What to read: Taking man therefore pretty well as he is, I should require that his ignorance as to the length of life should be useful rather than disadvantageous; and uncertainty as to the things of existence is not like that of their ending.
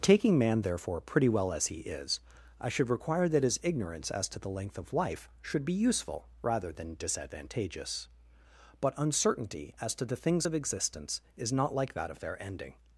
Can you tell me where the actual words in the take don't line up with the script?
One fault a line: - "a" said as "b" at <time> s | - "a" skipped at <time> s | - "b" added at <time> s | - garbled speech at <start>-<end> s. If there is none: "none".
- "and" said as "but" at 8.8 s